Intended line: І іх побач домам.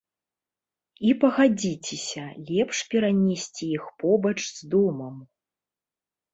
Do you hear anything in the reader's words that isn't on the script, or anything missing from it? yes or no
yes